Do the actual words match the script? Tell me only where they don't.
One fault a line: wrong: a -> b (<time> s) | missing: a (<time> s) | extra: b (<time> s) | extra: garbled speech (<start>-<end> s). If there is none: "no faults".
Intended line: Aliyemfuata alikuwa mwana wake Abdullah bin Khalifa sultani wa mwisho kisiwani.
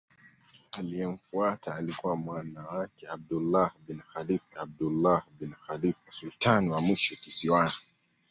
extra: Abdullah bin Khalifa (4.6 s)